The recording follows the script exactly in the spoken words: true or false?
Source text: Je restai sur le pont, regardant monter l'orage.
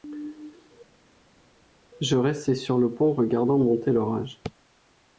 true